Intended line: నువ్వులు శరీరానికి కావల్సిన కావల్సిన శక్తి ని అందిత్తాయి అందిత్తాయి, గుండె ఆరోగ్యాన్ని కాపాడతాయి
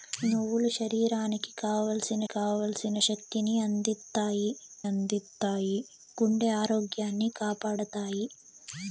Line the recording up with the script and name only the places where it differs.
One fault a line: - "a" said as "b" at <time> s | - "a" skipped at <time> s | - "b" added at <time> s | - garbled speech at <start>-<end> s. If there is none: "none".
none